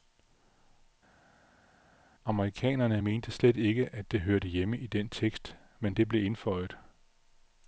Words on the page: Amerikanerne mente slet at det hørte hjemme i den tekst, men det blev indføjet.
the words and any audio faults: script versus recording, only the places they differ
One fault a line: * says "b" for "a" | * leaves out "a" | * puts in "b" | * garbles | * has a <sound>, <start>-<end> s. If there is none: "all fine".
* puts in "ikke"